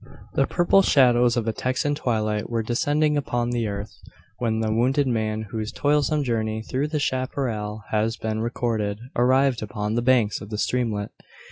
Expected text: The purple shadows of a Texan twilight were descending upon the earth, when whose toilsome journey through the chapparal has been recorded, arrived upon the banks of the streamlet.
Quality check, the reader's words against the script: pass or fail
fail